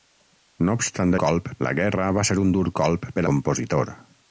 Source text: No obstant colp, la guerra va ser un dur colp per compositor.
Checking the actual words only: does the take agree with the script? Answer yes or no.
yes